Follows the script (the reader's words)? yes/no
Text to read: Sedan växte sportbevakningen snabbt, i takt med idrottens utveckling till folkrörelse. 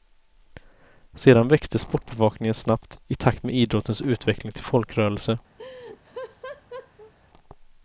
yes